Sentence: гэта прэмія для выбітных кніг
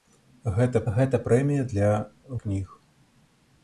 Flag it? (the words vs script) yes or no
yes